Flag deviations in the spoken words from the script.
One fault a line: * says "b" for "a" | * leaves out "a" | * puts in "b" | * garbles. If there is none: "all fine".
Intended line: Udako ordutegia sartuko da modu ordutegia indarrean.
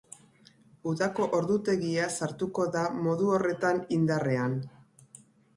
* says "horretan" for "ordutegia"